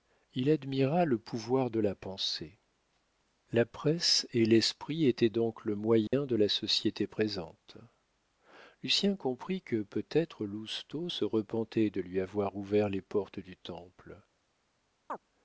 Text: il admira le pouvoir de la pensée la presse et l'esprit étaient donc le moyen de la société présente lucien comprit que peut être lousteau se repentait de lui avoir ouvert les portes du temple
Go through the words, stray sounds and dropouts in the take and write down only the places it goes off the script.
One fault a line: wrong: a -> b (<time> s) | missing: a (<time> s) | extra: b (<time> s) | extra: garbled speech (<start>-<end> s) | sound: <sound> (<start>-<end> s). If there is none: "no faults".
sound: dropout (6.1-6.1 s)
sound: chirp (15.1-15.2 s)